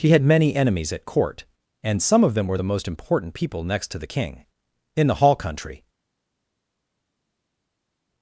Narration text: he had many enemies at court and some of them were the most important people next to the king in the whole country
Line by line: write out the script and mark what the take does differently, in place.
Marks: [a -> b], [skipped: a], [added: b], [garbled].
he had many enemies at court and some of them were the most important people next to the king in the [whole -> hall] country